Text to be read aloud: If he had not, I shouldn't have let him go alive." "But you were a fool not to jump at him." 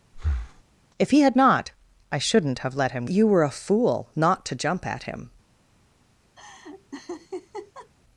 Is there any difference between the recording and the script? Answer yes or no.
yes